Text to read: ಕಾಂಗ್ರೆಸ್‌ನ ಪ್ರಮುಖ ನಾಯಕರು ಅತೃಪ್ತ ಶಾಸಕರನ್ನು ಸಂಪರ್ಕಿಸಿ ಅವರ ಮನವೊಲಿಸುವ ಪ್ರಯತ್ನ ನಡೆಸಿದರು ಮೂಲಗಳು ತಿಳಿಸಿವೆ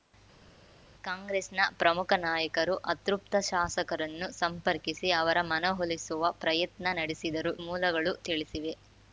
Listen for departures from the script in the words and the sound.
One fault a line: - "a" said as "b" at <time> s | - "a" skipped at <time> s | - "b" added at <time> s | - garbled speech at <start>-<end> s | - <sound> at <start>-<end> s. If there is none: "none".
none